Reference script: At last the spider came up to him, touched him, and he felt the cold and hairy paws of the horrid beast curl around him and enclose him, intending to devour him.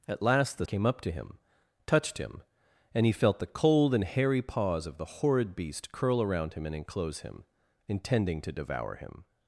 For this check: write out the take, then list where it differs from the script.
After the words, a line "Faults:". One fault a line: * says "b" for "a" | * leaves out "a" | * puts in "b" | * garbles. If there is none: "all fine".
At last the came up to him, touched him, and he felt the cold and hairy paws of the horrid beast curl around him and enclose him, intending to devour him.
Faults:
* leaves out "spider"